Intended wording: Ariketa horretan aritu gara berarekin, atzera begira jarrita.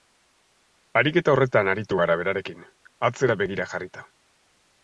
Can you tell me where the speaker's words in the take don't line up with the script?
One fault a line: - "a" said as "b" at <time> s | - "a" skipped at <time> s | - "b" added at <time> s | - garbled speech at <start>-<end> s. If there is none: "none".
none